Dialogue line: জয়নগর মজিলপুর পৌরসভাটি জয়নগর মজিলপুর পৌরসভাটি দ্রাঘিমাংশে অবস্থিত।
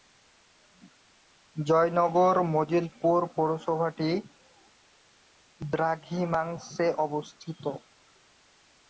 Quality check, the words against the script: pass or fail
fail